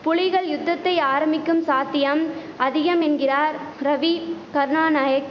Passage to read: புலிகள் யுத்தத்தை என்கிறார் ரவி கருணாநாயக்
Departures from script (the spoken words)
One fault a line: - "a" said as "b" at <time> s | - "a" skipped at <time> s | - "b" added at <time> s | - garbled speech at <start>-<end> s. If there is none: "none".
- "ஆரம்பிக்கும் சாத்தியம் அதிகம்" added at 1.1 s